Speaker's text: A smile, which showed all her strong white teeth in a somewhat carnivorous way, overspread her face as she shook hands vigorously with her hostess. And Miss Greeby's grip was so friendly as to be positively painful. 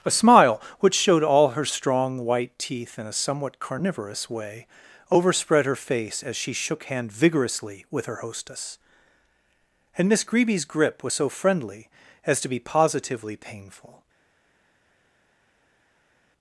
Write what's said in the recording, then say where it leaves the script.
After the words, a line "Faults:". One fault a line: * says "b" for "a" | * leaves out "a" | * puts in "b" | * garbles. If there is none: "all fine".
A smile, which showed all her strong white teeth in a somewhat carnivorous way, overspread her face as she shook hand vigorously with her hostess. And Miss Greeby's grip was so friendly as to be positively painful.
Faults:
* says "hand" for "hands"